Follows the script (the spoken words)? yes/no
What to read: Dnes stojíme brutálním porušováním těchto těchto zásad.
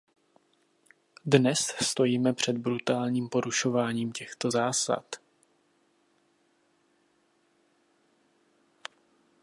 no